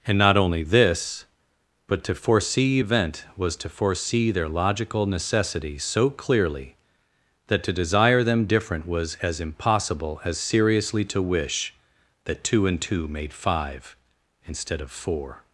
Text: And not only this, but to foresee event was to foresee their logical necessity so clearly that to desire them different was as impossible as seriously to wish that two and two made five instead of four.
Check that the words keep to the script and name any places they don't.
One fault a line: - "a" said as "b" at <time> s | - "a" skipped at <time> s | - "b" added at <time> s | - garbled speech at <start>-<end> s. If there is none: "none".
none